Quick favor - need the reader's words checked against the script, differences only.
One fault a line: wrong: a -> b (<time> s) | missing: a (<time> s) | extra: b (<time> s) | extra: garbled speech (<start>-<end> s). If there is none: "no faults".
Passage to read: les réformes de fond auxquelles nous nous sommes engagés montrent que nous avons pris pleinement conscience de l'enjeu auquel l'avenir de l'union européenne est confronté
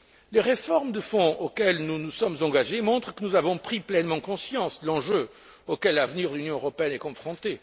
no faults